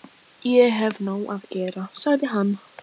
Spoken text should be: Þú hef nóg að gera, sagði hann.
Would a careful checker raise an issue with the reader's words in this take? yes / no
yes